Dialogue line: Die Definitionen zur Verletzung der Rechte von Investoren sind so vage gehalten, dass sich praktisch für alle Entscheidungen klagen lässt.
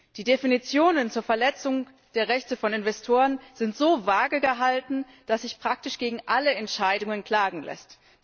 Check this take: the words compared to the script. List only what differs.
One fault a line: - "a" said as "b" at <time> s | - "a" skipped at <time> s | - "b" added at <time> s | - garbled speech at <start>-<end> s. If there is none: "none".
- "für" said as "gegen" at 6.0 s